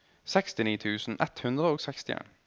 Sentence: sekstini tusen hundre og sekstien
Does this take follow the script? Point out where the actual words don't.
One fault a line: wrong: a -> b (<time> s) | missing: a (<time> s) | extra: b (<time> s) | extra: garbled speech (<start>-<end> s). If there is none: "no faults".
extra: ett (1.2 s)